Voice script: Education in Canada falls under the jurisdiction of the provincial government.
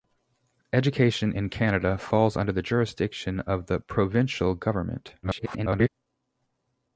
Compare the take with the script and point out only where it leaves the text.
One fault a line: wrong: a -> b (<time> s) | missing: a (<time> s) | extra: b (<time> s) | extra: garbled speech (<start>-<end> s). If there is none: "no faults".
extra: garbled speech (5.2-5.9 s)